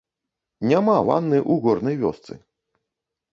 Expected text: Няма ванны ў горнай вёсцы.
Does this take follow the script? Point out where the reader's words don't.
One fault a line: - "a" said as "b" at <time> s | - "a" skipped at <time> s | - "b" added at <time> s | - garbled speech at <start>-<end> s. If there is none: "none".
none